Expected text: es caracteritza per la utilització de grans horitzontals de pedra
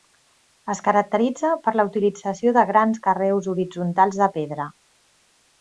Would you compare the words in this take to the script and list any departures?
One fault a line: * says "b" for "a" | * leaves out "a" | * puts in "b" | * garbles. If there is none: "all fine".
* puts in "carreus"